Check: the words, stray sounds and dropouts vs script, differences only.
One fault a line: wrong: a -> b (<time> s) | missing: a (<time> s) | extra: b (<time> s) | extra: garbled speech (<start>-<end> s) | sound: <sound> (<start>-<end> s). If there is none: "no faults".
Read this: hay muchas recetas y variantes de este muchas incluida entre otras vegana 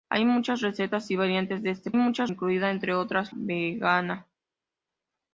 no faults